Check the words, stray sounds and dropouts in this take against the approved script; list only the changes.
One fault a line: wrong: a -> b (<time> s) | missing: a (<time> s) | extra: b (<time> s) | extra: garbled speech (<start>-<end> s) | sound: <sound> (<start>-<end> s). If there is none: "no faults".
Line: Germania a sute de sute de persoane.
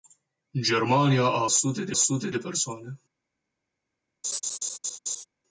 sound: laugh (4.2-5.3 s)